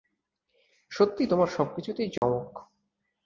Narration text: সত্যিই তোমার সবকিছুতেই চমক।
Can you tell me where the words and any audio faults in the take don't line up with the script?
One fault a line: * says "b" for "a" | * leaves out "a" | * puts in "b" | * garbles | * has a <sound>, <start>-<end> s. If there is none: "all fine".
* has a dropout, 2.2-2.2 s